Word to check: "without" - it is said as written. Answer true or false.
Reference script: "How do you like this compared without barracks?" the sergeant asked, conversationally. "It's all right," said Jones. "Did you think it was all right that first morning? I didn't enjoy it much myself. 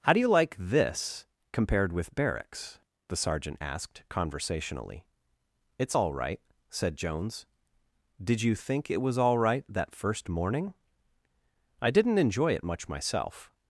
false